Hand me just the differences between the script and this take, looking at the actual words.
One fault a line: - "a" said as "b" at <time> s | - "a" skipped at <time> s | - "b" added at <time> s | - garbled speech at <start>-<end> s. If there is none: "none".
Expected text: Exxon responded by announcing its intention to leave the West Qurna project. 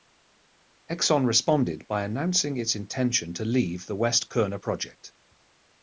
none